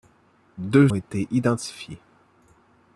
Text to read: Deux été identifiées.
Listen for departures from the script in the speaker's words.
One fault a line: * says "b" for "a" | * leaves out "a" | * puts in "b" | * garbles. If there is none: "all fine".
all fine